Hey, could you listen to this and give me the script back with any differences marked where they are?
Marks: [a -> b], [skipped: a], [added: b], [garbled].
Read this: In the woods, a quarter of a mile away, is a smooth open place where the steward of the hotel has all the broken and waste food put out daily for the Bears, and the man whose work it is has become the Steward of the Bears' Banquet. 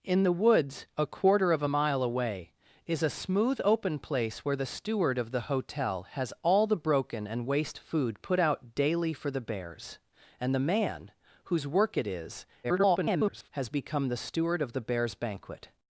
In the woods, a quarter of a mile away, is a smooth open place where the steward of the hotel has all the broken and waste food put out daily for the Bears, and the man whose work it is [garbled] has become the Steward of the Bears' Banquet.